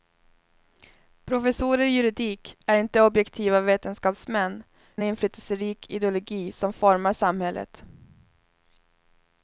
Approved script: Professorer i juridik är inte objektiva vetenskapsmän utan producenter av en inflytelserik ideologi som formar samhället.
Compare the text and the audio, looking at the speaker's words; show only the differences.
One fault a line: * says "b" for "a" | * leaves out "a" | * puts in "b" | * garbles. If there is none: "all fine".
* leaves out "utan producenter av"